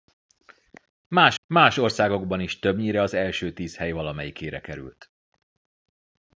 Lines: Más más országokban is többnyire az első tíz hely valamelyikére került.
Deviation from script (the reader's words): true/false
false